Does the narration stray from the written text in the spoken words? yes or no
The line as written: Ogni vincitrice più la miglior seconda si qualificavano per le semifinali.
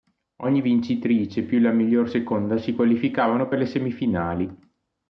no